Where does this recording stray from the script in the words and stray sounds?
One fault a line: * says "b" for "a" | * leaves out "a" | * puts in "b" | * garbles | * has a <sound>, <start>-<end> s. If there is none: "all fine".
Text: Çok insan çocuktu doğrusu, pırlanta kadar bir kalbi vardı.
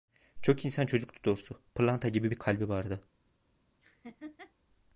* says "gibi" for "kadar"
* has a laugh, 3.8-4.5 s